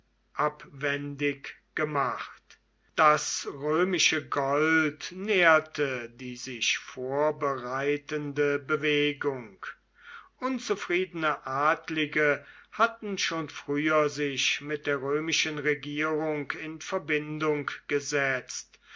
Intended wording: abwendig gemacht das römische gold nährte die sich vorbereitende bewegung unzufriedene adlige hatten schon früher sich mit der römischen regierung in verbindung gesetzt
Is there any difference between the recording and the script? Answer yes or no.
no